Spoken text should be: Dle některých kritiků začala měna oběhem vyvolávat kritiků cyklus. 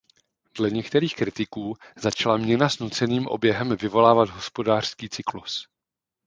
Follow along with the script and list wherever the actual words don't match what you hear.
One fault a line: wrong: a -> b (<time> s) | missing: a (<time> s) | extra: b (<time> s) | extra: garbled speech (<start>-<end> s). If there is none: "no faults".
extra: s nuceným (2.7 s)
wrong: kritiků -> hospodářský (4.3 s)